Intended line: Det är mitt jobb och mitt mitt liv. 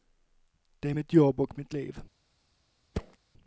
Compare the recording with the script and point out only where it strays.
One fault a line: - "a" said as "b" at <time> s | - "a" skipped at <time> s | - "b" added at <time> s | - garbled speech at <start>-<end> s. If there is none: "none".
- "mitt" skipped at 1.7 s